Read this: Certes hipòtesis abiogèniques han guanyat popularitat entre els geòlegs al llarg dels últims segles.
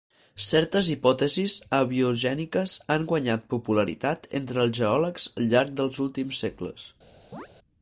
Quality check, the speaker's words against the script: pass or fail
pass